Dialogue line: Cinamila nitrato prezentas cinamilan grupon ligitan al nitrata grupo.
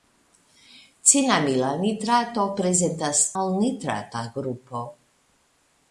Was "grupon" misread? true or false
true